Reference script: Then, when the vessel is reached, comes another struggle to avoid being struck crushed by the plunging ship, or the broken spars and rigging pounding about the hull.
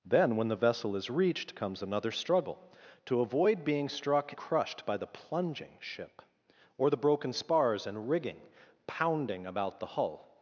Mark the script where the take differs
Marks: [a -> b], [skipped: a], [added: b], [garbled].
Then, when the vessel is reached, comes another struggle to avoid being struck crushed by the plunging ship, or the broken spars and rigging pounding about the hull.